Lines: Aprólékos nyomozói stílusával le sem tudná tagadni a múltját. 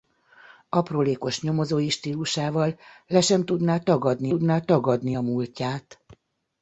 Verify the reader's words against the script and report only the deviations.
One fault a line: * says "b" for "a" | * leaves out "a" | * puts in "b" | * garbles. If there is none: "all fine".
* puts in "tudná tagadni"